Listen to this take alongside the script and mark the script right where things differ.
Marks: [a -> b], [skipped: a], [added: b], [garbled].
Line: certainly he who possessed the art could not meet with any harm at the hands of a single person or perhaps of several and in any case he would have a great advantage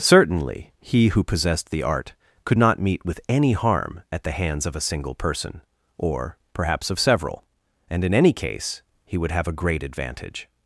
certainly he who possessed the art could not meet with any harm at the hands of a single person or perhaps of several and in any case he would have a great advantage